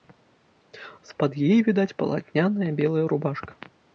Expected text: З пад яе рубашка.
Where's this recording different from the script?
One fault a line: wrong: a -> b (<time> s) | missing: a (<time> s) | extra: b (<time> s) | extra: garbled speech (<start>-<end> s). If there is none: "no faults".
extra: відаць палатняная белая (1.7 s)